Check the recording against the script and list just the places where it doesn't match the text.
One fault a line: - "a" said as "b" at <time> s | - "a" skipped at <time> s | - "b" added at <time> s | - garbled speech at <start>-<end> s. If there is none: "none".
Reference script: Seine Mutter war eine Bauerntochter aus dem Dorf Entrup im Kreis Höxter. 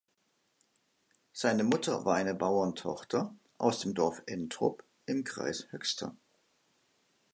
none